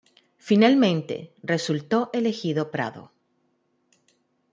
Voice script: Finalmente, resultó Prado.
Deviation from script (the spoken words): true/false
true